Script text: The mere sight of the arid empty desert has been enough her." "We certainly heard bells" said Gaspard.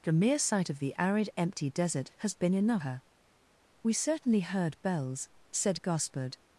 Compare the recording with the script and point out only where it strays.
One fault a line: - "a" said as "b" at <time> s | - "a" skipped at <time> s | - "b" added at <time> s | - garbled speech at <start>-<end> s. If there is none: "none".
none